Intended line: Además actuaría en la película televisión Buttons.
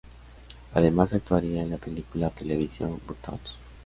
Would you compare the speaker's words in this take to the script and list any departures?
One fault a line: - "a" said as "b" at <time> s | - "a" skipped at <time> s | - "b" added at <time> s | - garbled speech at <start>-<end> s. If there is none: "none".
none